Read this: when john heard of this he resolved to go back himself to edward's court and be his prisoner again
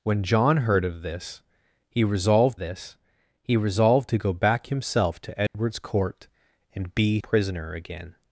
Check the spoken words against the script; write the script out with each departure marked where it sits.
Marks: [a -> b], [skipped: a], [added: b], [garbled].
when john heard of this he resolved [added: this he resolved] to go back himself to edward's court and be [skipped: his] prisoner again